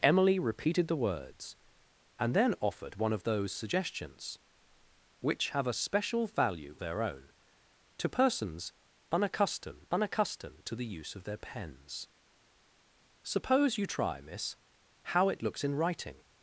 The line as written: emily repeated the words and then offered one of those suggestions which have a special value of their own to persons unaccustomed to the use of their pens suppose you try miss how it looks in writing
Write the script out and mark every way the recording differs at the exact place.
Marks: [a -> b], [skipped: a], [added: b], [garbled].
emily repeated the words and then offered one of those suggestions which have a special value [skipped: of] their own to persons unaccustomed [added: unaccustomed] to the use of their pens suppose you try miss how it looks in writing